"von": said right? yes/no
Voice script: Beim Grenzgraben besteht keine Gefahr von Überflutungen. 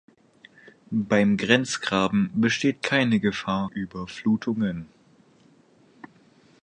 no